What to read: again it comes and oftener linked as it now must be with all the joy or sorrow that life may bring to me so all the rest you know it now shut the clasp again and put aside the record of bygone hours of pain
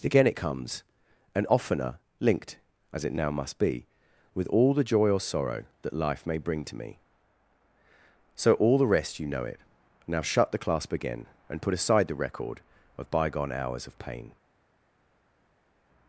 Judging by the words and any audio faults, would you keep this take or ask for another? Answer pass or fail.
pass